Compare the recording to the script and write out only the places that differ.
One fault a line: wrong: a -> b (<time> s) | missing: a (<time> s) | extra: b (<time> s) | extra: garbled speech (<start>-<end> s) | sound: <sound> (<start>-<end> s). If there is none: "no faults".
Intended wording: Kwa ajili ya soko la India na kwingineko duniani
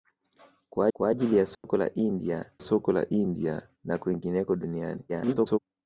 extra: kwa (0.9 s)
sound: dropout (1.5-1.6 s)
extra: soko la India (2.6 s)
extra: garbled speech (5.1-5.6 s)